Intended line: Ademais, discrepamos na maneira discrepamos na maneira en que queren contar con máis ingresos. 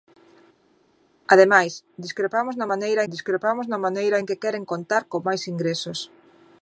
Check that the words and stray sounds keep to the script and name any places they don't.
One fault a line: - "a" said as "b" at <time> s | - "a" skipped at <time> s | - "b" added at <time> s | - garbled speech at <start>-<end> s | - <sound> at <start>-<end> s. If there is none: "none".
none